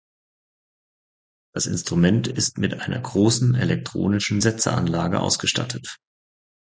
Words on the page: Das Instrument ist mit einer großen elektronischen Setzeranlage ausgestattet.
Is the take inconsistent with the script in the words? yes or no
no